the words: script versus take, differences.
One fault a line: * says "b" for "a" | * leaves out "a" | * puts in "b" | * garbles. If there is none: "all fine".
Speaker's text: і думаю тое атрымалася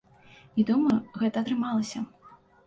* says "гэта" for "тое"